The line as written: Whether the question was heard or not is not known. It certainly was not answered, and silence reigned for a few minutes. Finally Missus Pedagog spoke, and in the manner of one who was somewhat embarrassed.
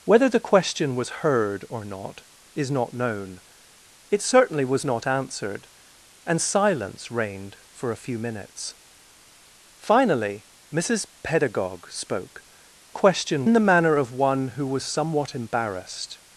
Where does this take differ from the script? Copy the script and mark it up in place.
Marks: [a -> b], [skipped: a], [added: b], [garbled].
Whether the question was heard or not is not known. It certainly was not answered, and silence reigned for a few minutes. Finally Missus Pedagog spoke, [and -> question] in the manner of one who was somewhat embarrassed.